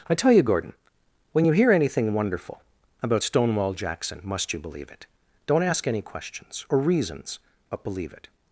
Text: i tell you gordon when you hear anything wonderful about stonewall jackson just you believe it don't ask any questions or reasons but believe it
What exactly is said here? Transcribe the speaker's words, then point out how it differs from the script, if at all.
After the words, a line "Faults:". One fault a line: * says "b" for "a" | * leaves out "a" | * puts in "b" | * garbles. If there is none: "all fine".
i tell you gordon when you hear anything wonderful about stonewall jackson must you believe it don't ask any questions or reasons but believe it
Faults:
* says "must" for "just"